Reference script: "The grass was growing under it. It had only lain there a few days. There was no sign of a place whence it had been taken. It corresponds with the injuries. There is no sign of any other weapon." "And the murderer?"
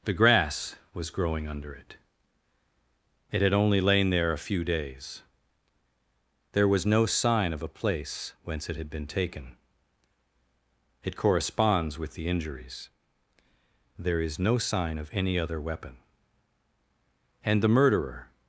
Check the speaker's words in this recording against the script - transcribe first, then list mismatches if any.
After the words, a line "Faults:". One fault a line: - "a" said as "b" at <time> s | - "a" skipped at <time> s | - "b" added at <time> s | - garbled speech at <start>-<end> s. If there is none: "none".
"The grass was growing under it. It had only lain there a few days. There was no sign of a place whence it had been taken. It corresponds with the injuries. There is no sign of any other weapon." "And the murderer?"
Faults:
none